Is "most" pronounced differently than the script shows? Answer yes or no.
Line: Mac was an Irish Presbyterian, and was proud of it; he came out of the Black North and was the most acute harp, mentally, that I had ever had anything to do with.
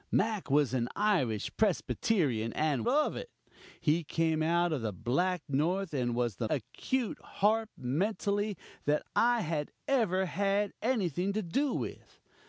yes